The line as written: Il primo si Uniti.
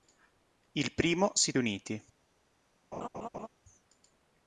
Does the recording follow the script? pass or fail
pass